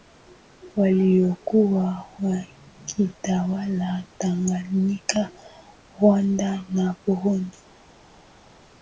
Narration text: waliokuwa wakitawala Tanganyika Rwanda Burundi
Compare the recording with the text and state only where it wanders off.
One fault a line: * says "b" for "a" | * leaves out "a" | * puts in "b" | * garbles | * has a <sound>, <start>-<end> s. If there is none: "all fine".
* puts in "na"